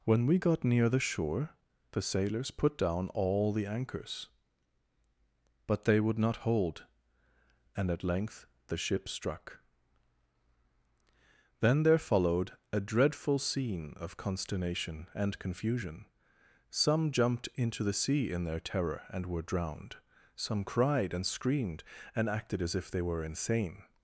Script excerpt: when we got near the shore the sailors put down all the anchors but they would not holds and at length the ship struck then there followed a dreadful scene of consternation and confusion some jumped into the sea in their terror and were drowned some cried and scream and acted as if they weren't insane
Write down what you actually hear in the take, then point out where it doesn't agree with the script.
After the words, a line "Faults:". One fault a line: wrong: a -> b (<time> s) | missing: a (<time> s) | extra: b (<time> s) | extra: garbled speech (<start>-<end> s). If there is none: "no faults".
when we got near the shore the sailors put down all the anchors but they would not hold and at length the ship struck then there followed a dreadful scene of consternation and confusion some jumped into the sea in their terror and were drowned some cried and screamed and acted as if they were insane
Faults:
wrong: holds -> hold (6.4 s)
wrong: scream -> screamed (21.3 s)
wrong: weren't -> were (23.0 s)